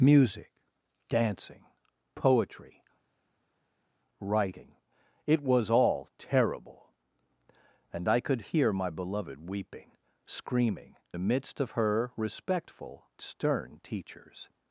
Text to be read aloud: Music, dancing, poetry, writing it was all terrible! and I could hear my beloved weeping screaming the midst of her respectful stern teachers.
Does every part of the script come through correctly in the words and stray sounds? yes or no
yes